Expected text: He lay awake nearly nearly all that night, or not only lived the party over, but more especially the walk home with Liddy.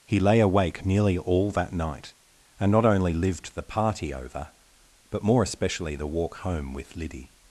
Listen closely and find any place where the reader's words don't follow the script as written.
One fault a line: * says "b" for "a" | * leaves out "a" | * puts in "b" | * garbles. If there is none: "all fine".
* leaves out "nearly"
* says "and" for "or"